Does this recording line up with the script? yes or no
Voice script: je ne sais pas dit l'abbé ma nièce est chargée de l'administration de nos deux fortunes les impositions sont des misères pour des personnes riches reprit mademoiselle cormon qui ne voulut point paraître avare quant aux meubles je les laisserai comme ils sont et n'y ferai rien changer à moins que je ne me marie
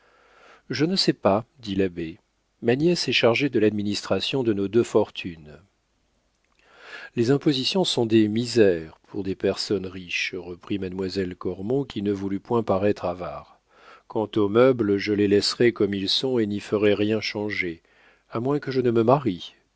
yes